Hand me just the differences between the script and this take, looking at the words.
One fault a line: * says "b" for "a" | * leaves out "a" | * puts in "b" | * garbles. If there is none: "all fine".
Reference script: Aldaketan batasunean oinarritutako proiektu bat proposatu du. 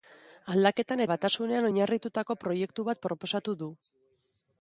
all fine